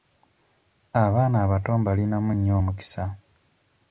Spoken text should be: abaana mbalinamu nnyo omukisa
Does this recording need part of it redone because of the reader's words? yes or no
yes